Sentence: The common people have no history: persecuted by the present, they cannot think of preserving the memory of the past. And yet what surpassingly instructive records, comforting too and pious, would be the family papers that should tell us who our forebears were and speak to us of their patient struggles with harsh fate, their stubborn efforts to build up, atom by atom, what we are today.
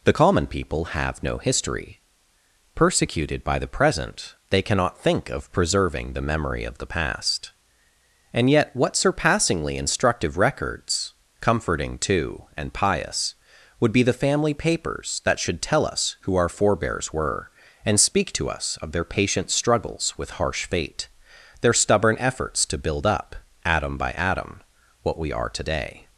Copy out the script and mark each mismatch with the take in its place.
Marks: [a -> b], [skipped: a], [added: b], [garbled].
The common people have no history: persecuted by the present, they cannot think of preserving the memory of the past. And yet what surpassingly instructive records, comforting too and pious, would be the family papers that should tell us who our forebears were and speak to us of their patient struggles with harsh fate, their stubborn efforts to build up, atom by atom, what we are today.